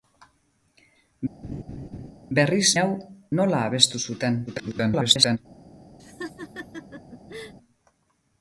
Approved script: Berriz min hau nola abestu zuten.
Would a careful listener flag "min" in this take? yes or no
yes